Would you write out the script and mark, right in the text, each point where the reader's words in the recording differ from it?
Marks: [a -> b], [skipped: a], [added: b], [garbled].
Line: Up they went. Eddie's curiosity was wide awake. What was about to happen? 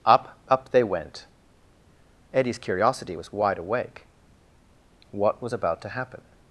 Up [added: up] they went. Eddie's curiosity was wide awake. What was about to happen?